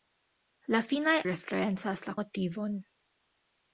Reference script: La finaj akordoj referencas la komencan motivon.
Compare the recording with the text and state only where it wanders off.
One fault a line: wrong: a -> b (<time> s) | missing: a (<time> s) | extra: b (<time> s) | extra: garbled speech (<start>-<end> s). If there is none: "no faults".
missing: akordoj (1.1 s)
missing: komencan (2.2 s)